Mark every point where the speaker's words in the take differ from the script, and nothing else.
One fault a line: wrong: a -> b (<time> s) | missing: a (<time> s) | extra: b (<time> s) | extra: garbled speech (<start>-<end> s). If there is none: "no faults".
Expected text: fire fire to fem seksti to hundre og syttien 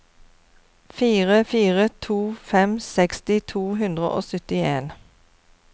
no faults